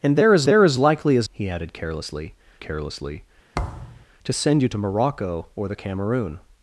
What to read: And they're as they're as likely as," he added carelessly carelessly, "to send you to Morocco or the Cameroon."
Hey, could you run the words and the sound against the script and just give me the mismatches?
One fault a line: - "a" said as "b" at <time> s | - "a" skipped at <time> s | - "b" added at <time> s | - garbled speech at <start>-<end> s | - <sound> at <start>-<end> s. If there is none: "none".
- thud at 3.5-4.1 s